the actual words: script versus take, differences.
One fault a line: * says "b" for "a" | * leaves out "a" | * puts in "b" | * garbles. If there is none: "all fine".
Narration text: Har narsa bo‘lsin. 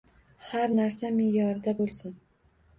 * puts in "me'yorida"